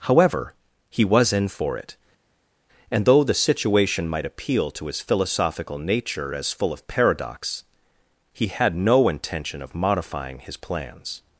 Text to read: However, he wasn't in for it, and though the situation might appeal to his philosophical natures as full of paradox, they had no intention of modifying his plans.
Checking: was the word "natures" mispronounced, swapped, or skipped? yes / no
yes